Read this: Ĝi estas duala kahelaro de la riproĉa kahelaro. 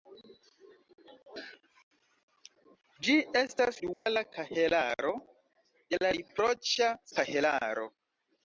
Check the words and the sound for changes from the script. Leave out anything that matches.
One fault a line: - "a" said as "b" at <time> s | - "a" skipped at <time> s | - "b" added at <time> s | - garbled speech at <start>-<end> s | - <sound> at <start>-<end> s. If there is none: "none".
- dropout at 3.9-4.1 s